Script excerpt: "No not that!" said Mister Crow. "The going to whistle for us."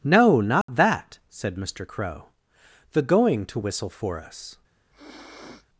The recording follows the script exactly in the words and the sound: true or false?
false